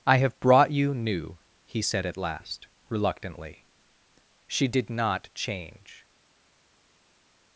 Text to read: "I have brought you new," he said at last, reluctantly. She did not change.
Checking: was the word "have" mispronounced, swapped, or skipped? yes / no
no